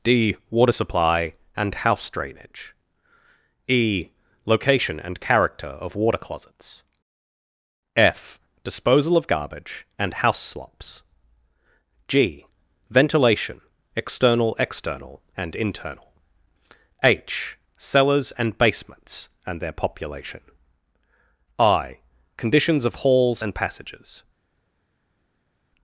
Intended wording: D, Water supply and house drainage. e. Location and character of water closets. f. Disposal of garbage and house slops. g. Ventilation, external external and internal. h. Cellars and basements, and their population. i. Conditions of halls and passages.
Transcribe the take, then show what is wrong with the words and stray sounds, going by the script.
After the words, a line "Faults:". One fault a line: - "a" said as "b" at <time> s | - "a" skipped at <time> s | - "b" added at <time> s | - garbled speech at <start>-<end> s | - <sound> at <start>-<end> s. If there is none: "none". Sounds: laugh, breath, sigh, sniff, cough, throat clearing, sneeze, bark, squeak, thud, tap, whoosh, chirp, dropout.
D, Water supply and house drainage. e. Location and character of water closets. f. Disposal of garbage and house slops. g. Ventilation, external external and internal. h. Cellars and basements, and their population. i. Conditions of halls and passages.
Faults:
none